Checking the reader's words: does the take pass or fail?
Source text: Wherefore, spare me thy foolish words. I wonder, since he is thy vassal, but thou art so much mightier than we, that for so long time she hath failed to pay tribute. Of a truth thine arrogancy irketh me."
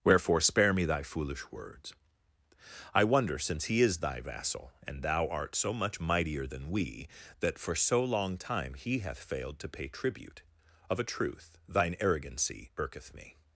fail